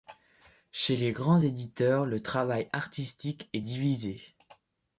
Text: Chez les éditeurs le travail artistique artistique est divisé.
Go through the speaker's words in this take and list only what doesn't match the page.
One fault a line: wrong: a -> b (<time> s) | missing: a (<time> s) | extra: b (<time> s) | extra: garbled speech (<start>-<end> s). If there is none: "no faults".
extra: grands (1.1 s)
missing: artistique (3.5 s)